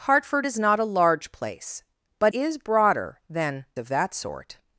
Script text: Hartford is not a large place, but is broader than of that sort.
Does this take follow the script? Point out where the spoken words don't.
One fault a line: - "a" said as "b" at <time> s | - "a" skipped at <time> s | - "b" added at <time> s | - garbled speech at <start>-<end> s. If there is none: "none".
none